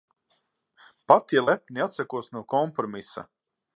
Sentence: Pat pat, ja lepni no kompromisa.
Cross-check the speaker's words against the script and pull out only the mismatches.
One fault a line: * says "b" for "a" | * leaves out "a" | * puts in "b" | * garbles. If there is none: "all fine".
* leaves out "pat"
* puts in "atsakos"